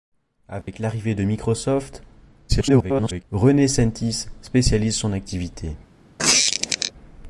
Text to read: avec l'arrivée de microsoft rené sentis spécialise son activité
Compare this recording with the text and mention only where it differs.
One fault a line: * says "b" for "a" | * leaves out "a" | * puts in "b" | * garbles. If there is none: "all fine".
* garbles